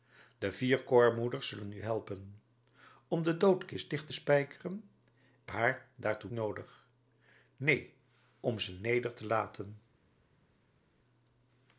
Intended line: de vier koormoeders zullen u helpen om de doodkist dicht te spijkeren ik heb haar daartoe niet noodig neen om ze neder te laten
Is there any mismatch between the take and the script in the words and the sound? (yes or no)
yes